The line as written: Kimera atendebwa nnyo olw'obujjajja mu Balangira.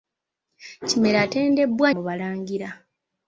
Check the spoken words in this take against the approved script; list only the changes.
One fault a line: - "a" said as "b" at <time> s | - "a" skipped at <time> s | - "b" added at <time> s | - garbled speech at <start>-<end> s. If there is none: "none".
- "nnyo olw'obujjajja" skipped at 1.9 s